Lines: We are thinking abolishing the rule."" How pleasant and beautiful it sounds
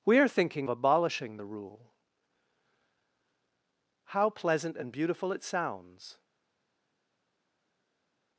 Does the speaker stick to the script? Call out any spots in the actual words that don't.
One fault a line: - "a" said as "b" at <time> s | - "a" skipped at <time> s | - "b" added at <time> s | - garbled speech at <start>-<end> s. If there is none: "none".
none